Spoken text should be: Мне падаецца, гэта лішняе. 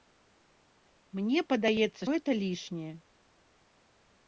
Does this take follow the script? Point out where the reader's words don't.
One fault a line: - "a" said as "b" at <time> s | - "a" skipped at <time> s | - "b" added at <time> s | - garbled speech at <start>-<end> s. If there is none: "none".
none